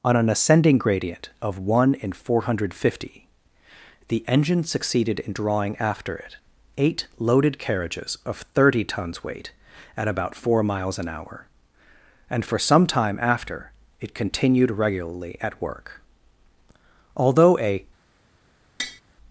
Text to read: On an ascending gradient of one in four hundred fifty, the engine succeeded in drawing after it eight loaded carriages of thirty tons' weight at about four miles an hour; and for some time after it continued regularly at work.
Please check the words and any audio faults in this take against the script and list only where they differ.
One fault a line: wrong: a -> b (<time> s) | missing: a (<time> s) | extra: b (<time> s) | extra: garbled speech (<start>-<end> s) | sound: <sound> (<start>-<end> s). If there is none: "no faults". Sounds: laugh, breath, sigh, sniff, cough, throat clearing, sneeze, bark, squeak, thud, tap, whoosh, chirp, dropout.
extra: Although a (17.1 s)
sound: tap (18.8-19.0 s)